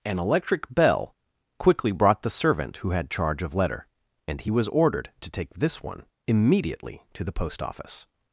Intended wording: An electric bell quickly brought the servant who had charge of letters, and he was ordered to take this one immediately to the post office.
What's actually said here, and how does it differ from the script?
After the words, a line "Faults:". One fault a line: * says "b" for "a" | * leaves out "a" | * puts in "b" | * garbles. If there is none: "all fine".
An electric bell quickly brought the servant who had charge of letter, and he was ordered to take this one immediately to the post office.
Faults:
* says "letter" for "letters"